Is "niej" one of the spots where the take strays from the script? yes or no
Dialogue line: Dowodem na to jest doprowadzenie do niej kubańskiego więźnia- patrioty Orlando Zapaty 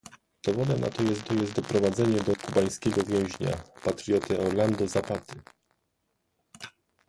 yes